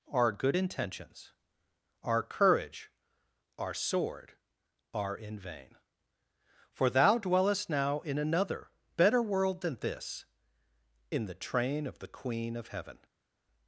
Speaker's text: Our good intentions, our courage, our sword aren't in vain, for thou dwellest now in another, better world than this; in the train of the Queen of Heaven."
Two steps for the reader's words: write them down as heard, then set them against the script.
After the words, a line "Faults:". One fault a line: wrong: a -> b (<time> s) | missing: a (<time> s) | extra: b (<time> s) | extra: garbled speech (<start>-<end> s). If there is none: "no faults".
Our good intentions, our courage, our sword are in vain, for thou dwellest now in another, better world than this; in the train of the Queen of Heaven."
Faults:
wrong: aren't -> are (4.9 s)